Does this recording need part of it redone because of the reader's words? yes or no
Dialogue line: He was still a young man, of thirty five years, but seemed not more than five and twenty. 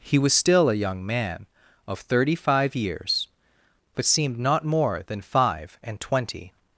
no